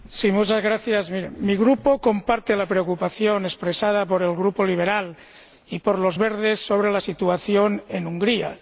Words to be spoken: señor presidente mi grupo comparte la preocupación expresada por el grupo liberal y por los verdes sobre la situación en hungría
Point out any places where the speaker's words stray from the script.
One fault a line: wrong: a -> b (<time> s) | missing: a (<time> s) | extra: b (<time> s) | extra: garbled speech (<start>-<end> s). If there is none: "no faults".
no faults